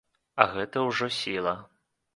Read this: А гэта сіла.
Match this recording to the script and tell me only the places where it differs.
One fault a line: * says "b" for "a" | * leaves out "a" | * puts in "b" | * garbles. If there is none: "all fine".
* puts in "ўжо"